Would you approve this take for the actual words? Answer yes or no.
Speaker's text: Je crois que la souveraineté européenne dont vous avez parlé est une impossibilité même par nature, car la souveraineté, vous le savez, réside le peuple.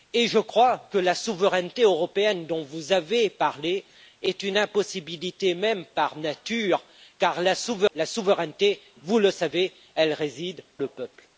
yes